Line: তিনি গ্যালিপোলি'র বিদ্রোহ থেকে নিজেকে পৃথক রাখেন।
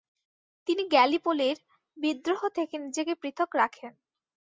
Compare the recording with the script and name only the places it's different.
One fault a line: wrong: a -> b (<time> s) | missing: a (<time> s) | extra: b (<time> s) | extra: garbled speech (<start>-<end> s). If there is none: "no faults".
no faults